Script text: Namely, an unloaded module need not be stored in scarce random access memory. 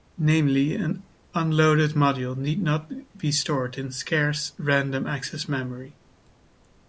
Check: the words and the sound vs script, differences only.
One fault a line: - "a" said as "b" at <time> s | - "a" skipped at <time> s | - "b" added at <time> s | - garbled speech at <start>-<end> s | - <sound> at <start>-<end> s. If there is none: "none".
none